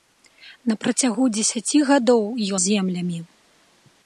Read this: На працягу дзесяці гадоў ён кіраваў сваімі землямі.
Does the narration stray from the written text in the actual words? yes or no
yes